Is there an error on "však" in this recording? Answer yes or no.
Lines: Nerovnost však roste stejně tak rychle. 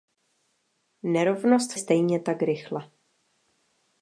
yes